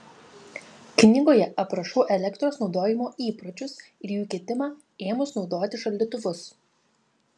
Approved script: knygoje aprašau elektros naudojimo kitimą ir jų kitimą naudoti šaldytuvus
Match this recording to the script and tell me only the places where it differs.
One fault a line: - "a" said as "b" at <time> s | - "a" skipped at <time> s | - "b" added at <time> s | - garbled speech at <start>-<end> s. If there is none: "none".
- "kitimą" said as "įpročius" at 3.3 s
- "ėmus" added at 5.1 s